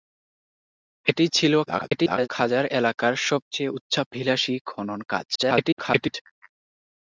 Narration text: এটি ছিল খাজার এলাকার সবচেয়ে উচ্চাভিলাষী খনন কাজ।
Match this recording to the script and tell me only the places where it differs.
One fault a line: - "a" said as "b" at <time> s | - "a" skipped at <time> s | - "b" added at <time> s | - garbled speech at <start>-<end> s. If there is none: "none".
- garbled speech at 1.7-2.3 s
- garbled speech at 5.4-6.1 s